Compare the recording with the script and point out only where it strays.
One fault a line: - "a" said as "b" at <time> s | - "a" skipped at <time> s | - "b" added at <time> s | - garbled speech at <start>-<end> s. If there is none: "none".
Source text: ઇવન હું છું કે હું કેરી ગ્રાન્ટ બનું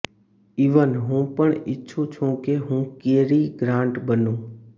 - "પણ ઇચ્છું" added at 1.4 s